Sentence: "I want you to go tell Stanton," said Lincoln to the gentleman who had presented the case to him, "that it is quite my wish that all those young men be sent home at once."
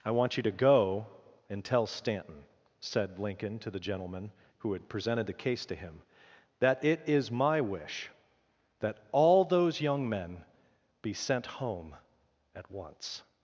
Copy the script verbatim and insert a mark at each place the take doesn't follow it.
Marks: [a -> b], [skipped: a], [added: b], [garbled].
"I want you to go [added: and] tell Stanton," said Lincoln to the gentleman who had presented the case to him, "that it is [skipped: quite] my wish that all those young men be sent home at once."